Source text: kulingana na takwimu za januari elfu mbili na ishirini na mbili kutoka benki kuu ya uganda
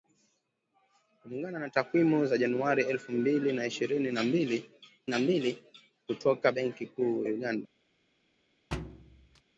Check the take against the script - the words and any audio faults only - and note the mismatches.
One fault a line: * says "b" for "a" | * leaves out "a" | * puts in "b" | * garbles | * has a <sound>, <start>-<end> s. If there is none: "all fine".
* puts in "na mbili"
* leaves out "ya"
* has a thud, 8.7-9.4 s